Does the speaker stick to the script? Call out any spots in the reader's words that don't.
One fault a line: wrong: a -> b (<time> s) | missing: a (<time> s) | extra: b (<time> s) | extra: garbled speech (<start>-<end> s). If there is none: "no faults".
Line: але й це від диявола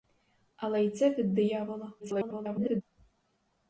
extra: garbled speech (2.0-2.8 s)